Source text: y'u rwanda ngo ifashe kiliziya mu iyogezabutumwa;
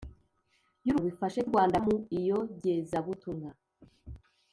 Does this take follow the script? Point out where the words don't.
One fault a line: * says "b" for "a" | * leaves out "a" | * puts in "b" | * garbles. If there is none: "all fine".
* leaves out "rwanda"
* says "rwanda" for "kiliziya"